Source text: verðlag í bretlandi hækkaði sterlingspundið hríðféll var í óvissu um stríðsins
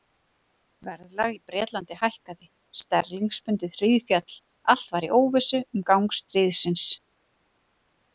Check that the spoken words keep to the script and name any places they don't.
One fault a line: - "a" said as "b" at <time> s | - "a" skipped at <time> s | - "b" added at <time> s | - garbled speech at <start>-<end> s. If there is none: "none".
- "allt" added at 4.7 s
- "gang" added at 5.9 s